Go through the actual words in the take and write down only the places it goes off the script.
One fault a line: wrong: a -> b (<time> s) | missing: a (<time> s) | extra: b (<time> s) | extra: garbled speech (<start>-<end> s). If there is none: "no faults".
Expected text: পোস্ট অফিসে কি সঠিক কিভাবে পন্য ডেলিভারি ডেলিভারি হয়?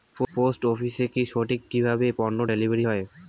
missing: ডেলিভারি (2.8 s)